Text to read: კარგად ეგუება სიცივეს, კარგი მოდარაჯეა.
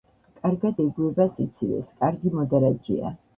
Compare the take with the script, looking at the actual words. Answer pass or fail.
pass